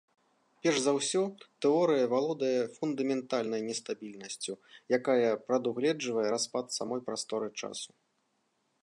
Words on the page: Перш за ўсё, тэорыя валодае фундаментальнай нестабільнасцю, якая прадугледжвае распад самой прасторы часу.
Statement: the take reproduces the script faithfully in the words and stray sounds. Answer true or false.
true